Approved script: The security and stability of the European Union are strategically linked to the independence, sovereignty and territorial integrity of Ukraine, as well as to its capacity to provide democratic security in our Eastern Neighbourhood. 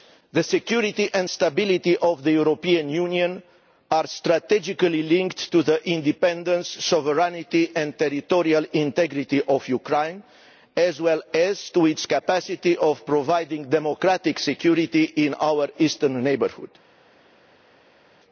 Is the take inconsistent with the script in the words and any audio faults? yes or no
no